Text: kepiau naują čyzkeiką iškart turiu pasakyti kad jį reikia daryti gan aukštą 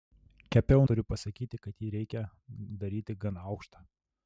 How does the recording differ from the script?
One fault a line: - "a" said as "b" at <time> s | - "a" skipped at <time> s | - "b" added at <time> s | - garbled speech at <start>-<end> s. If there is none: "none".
- "naują čyzkeiką iškart" skipped at 0.8 s